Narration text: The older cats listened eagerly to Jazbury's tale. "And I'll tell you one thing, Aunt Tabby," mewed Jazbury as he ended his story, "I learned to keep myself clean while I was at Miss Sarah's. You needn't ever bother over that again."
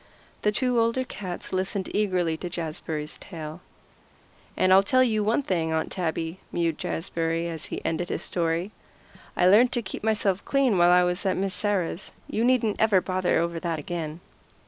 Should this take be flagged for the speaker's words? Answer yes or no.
yes